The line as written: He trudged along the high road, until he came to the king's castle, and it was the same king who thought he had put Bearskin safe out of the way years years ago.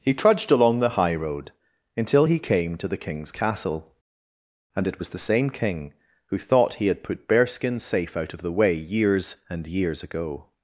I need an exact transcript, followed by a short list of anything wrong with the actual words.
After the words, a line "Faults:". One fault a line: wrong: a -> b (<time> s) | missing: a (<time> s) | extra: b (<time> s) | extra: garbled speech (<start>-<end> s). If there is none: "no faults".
He trudged along the high road, until he came to the king's castle, and it was the same king who thought he had put Bearskin safe out of the way years and years ago.
Faults:
extra: and (9.5 s)